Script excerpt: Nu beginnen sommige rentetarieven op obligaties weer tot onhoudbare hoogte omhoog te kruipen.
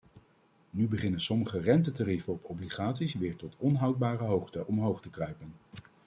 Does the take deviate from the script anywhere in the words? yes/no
no